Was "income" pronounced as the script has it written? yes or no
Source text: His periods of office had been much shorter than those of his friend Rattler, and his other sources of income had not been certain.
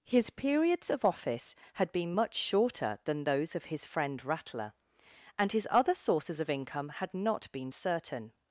yes